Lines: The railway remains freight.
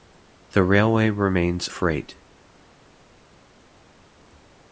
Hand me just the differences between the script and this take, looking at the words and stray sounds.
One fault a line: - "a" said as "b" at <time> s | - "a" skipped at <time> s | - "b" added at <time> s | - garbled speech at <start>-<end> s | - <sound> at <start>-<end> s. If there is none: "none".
none